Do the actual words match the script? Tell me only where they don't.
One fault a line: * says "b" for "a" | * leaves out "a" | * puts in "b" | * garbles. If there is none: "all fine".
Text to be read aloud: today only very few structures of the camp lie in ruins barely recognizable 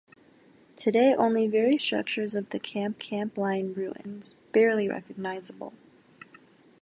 * leaves out "few"
* puts in "camp"